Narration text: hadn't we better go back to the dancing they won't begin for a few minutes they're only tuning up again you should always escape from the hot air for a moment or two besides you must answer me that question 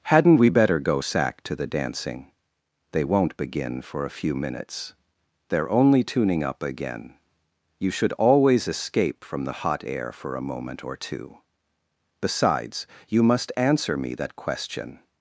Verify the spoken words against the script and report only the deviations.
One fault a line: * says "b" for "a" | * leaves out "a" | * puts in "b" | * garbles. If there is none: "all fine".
* says "sack" for "back"